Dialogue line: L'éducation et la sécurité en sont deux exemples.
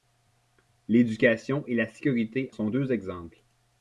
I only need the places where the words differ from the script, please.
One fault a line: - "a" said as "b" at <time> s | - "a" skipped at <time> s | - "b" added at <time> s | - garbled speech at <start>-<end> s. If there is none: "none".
- "en" skipped at 2.5 s